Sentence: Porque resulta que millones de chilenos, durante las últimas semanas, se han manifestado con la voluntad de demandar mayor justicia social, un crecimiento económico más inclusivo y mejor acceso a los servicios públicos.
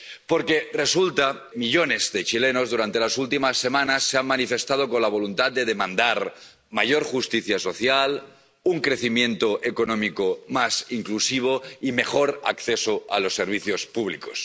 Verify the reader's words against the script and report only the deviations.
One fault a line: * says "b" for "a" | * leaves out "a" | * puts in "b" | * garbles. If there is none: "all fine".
* leaves out "que"